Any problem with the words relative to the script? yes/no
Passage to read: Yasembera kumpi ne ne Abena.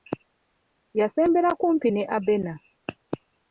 yes